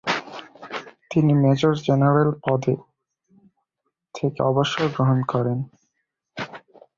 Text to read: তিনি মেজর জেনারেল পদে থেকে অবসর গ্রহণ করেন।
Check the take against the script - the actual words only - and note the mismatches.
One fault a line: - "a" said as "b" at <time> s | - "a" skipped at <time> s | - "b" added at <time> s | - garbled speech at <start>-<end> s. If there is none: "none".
none